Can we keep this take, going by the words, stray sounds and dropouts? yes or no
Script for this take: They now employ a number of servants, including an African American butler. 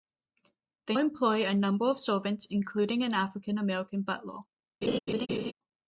no